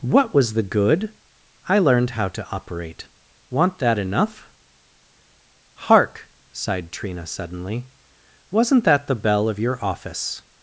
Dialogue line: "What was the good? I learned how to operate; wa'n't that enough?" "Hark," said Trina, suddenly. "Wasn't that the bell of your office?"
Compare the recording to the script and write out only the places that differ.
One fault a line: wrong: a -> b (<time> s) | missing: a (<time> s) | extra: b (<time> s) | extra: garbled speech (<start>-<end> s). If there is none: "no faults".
wrong: said -> sighed (6.5 s)